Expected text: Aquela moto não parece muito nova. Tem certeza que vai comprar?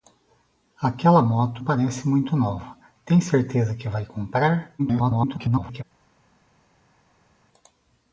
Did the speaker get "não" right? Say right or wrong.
wrong